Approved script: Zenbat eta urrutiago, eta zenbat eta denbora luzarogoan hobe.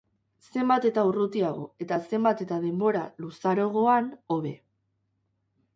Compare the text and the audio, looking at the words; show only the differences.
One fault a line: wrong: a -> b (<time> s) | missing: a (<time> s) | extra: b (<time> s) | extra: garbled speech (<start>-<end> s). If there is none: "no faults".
no faults